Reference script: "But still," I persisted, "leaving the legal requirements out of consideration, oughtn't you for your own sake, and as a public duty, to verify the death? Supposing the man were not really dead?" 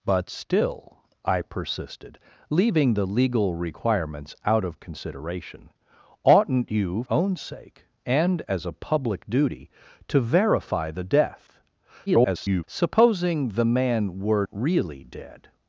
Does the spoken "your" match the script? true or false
false